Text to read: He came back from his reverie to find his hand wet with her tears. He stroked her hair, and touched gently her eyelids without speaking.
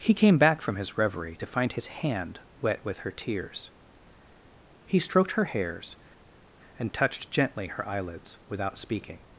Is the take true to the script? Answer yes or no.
no